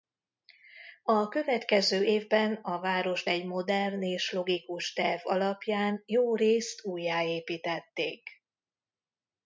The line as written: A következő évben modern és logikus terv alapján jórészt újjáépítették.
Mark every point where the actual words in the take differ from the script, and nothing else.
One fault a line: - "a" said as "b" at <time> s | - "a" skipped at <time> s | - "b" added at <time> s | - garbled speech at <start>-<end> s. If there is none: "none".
- "a várost egy" added at 2.5 s